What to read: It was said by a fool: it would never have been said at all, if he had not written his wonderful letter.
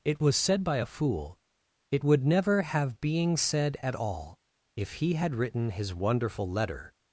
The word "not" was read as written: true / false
false